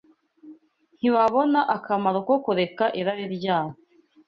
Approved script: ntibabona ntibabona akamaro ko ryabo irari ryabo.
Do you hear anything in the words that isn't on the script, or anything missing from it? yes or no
yes